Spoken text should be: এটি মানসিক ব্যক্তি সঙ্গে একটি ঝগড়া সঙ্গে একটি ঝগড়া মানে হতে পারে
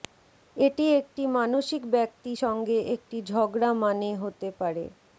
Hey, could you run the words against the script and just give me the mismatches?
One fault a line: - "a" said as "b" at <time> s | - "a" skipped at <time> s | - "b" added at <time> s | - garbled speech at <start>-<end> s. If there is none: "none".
- "একটি" added at 1.0 s
- "সঙ্গে একটি ঝগড়া" skipped at 3.7 s